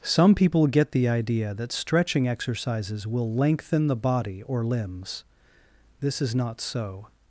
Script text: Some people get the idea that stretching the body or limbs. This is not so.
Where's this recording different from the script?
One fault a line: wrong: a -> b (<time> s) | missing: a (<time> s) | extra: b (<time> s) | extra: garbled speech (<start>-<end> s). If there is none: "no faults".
extra: exercises will lengthen (2.3 s)